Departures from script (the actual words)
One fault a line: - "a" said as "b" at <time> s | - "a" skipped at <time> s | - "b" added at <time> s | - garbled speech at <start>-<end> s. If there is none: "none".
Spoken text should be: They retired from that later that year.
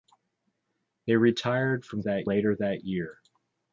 none